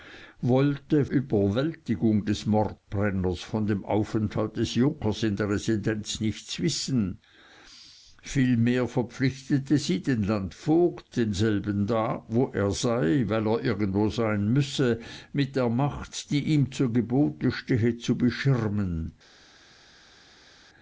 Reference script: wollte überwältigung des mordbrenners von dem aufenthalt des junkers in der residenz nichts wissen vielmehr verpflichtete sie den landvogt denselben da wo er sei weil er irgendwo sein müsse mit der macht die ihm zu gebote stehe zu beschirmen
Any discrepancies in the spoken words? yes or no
no